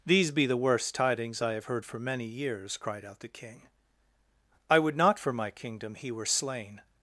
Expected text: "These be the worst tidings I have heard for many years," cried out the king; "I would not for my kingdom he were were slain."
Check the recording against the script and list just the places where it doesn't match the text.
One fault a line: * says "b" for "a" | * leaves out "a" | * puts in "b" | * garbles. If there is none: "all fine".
* leaves out "were"